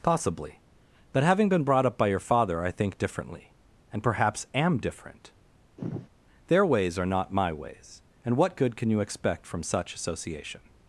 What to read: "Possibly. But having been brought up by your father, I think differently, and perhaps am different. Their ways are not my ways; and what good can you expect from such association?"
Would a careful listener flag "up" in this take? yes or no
no